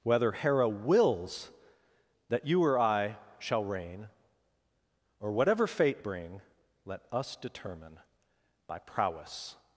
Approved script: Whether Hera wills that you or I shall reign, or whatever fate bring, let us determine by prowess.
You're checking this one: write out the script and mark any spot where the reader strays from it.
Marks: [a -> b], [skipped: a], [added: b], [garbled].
Whether Hera wills that you or I shall reign, or whatever fate bring, let us determine by prowess.